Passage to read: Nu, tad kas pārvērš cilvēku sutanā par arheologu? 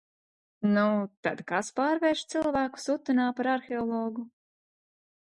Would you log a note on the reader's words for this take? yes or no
no